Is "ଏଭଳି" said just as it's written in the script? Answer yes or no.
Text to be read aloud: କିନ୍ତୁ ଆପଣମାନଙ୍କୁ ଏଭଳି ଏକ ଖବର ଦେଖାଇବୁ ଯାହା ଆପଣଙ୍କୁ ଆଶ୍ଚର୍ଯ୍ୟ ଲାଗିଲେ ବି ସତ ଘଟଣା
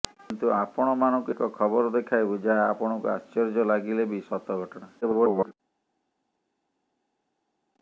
no